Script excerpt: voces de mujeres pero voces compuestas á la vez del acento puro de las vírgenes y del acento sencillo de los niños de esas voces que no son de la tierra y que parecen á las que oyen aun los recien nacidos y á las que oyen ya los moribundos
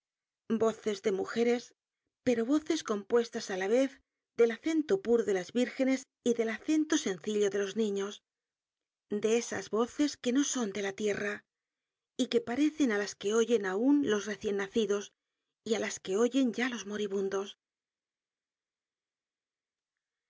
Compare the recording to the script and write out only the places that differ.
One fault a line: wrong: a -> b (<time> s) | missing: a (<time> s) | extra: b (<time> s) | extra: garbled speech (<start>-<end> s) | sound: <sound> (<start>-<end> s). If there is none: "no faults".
no faults